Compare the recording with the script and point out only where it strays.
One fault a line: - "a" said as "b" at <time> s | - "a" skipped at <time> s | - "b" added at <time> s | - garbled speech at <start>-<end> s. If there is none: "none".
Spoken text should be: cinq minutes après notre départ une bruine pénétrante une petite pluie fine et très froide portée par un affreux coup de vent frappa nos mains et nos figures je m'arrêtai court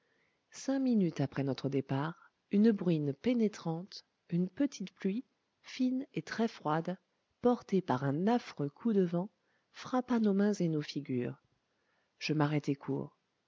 none